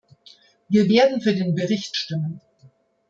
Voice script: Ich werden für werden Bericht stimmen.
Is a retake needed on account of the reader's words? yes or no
yes